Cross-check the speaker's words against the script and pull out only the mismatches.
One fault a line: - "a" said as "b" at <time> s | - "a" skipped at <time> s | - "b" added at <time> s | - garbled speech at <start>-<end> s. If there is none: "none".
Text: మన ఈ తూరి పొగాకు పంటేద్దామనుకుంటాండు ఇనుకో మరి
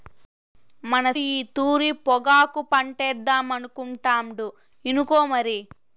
none